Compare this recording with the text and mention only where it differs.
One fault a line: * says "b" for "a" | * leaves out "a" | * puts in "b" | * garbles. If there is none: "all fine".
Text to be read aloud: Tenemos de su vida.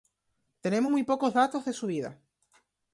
* puts in "muy pocos datos"